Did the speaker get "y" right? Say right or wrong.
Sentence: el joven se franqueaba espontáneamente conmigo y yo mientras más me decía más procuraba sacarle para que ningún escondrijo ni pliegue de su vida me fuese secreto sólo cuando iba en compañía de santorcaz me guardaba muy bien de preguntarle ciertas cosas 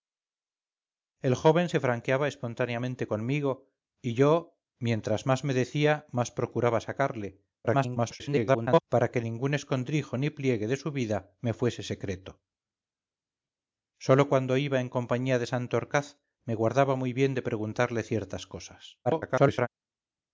right